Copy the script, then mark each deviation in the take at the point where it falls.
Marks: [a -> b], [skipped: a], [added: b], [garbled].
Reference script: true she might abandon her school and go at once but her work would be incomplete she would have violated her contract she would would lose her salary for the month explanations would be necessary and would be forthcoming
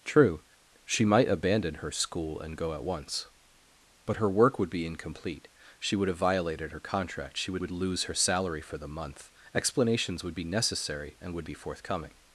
true she might abandon her school and go at once but her work would be incomplete she would have violated her contract she would would lose her salary for the month explanations would be necessary and would be forthcoming